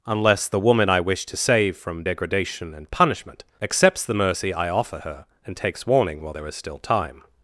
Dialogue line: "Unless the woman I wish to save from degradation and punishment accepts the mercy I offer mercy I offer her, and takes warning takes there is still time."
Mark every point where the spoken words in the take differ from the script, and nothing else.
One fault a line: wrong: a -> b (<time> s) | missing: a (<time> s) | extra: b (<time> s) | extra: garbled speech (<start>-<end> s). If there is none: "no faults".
missing: mercy I offer (5.0 s)
wrong: takes -> while (6.2 s)